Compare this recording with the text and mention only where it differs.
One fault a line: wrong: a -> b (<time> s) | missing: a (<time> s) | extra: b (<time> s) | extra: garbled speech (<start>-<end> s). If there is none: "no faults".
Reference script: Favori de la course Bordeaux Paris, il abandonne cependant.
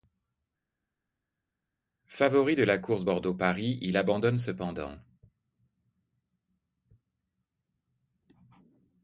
no faults